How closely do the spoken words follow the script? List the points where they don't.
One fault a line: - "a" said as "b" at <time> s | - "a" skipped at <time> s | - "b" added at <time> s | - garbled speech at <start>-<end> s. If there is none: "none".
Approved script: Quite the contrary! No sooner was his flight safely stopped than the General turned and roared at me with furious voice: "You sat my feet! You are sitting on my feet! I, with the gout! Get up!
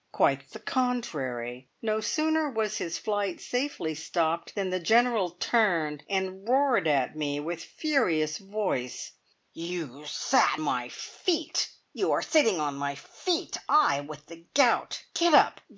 none